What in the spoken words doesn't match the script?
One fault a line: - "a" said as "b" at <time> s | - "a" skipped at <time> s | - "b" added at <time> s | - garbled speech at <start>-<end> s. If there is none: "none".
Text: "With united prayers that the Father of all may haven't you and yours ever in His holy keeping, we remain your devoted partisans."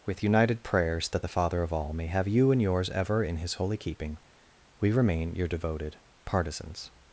- "haven't" said as "have" at 2.1 s